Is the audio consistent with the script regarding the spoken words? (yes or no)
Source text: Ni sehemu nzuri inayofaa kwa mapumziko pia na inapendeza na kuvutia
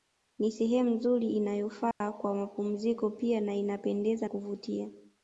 no